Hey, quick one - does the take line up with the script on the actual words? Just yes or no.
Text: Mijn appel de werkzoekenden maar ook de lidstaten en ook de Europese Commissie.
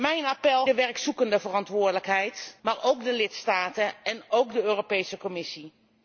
yes